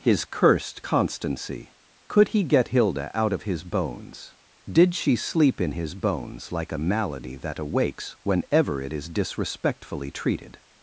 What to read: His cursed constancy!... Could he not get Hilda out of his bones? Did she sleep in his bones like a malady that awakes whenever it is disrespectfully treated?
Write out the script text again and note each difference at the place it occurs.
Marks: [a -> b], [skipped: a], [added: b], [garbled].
His cursed constancy!... Could he [skipped: not] get Hilda out of his bones? Did she sleep in his bones like a malady that awakes whenever it is disrespectfully treated?